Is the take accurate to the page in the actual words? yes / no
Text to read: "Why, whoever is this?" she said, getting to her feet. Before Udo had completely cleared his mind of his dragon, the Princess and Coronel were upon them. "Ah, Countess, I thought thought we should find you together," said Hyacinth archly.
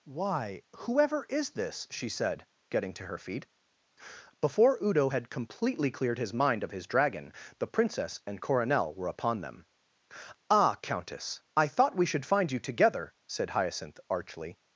no